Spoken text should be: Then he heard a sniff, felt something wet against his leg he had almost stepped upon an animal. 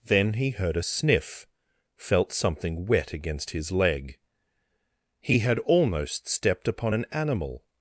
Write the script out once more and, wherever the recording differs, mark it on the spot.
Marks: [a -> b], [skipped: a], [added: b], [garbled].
Then he heard a sniff, felt something wet against his leg he had almost stepped upon an animal.